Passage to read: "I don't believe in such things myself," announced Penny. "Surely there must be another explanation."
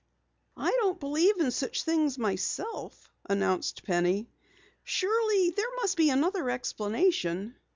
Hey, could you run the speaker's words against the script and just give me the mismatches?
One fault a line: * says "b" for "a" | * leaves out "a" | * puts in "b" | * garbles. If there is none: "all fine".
all fine